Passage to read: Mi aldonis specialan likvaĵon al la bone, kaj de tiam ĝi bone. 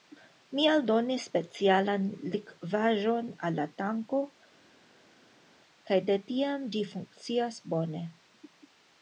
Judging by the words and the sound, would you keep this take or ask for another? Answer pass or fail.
fail